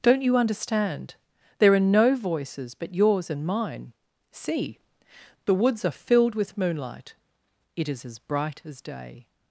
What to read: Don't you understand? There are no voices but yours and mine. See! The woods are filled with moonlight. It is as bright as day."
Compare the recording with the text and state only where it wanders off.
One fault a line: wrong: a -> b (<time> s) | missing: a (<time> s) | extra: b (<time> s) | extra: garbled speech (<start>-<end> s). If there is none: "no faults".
no faults